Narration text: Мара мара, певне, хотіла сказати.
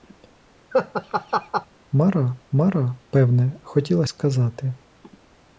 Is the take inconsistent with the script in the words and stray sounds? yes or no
yes